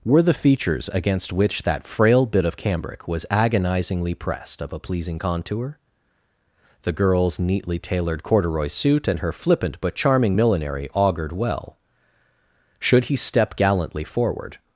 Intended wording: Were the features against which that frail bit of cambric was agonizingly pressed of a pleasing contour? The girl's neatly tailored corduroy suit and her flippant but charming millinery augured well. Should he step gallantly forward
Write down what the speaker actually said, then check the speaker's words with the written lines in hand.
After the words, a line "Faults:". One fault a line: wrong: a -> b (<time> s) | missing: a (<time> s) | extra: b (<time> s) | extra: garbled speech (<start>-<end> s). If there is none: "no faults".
Were the features against which that frail bit of cambric was agonizingly pressed of a pleasing contour? The girl's neatly tailored corduroy suit and her flippant but charming millinery augured well. Should he step gallantly forward
Faults:
no faults